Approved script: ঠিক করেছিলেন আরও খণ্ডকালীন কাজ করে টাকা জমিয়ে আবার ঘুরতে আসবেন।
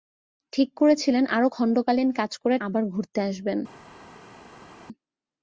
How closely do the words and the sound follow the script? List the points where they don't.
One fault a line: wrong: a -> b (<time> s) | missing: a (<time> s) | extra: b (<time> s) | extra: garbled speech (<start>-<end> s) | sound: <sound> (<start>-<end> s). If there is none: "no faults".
missing: টাকা জমিয়ে (2.6 s)